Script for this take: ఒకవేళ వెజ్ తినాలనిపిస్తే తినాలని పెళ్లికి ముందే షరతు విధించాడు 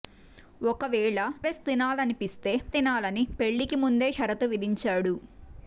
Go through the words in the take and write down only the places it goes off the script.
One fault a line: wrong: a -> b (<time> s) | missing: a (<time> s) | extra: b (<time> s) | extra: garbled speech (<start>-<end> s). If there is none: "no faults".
no faults